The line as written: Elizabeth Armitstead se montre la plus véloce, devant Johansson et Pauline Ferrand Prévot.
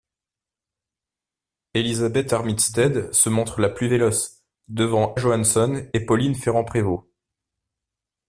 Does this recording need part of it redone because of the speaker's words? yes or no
no